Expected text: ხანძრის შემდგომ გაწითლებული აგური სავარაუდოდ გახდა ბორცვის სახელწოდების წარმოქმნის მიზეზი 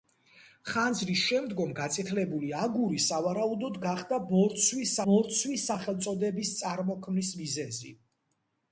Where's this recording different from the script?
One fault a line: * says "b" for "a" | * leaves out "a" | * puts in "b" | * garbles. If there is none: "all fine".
* puts in "ბორცვის"